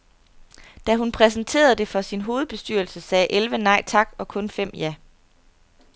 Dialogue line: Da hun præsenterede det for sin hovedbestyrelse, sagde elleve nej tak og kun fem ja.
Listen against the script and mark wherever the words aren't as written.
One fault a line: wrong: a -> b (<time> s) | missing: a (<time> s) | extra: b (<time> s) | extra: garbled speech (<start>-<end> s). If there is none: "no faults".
no faults